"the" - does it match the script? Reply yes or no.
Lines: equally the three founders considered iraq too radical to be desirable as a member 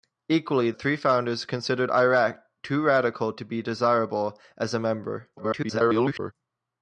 no